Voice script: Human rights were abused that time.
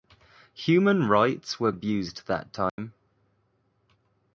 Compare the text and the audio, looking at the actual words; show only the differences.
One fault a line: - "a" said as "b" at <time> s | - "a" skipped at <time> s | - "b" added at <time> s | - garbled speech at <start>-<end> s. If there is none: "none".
none